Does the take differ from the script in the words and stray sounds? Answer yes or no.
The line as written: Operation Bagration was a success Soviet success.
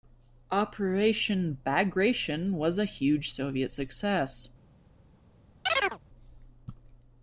yes